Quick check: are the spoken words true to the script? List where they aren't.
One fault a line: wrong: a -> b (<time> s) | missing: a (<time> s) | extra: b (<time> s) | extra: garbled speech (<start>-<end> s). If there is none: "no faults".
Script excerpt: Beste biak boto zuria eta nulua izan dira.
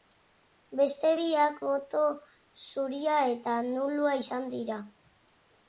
no faults